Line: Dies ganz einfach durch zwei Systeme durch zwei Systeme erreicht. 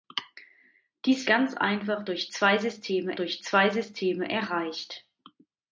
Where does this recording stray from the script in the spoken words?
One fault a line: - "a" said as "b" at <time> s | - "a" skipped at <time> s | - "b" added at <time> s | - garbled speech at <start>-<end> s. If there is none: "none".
none